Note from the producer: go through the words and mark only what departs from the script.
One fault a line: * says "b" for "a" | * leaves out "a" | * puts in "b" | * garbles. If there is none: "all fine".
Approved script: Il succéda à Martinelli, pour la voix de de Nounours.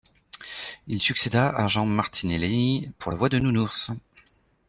* puts in "Jean"
* leaves out "de"